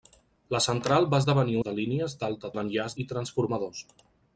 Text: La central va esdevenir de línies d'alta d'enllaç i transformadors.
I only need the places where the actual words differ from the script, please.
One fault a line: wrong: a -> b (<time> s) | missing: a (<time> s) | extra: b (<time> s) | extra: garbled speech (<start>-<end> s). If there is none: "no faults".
no faults